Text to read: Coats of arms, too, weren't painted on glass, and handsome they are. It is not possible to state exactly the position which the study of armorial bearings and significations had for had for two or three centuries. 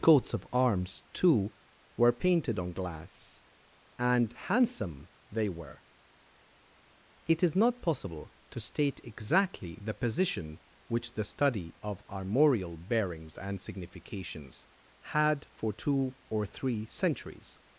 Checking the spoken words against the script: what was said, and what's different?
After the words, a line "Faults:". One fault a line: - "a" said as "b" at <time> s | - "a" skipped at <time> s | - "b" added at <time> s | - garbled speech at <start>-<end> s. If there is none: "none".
Coats of arms, too, were painted on glass, and handsome they were. It is not possible to state exactly the position which the study of armorial bearings and significations had for two or three centuries.
Faults:
- "weren't" said as "were" at 1.9 s
- "are" said as "were" at 5.5 s
- "had for" skipped at 15.7 s